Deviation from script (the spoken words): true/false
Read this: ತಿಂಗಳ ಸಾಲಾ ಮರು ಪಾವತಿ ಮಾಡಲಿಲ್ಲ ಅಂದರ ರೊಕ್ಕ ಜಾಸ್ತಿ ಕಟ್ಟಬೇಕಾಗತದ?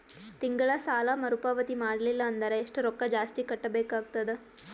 true